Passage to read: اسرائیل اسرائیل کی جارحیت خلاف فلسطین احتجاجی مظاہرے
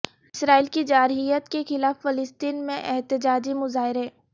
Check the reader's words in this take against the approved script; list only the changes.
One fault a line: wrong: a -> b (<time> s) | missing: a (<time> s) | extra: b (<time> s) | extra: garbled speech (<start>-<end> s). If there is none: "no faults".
missing: اسرائیل (0.7 s)
extra: کے (1.5 s)
extra: میں (2.7 s)